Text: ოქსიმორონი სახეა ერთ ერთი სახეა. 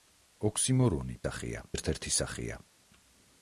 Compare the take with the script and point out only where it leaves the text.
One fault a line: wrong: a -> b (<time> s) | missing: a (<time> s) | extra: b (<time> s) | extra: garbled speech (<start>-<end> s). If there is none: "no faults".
no faults